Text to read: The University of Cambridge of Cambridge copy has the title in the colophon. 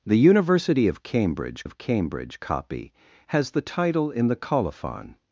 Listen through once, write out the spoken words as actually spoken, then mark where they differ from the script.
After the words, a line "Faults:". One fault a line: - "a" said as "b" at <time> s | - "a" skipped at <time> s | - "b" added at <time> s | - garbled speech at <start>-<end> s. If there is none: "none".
The University of Cambridge of Cambridge copy has the title in the colophon.
Faults:
none